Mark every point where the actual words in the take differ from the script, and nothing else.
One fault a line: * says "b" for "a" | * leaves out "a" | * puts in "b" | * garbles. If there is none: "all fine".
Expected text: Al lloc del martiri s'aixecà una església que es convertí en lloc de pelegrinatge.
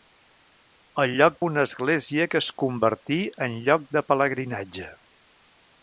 * leaves out "del martiri s'aixecà"